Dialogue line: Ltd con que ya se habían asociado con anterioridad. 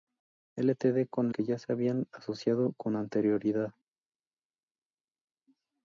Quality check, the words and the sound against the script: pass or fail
pass